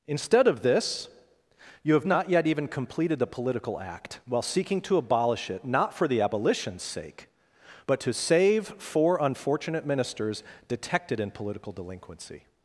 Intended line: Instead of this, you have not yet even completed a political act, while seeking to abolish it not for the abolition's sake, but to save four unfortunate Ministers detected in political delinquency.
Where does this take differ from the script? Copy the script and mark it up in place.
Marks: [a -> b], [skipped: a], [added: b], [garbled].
Instead of this, you have not yet even completed [a -> the] political act, while seeking to abolish it not for the abolition's sake, but to save four unfortunate Ministers detected in political delinquency.